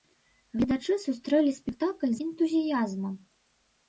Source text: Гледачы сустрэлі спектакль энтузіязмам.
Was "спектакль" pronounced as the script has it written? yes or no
yes